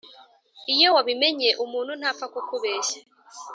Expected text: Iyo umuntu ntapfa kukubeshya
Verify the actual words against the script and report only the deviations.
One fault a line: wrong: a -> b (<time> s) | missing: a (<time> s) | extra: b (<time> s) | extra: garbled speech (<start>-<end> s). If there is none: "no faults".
extra: wabimenye (0.9 s)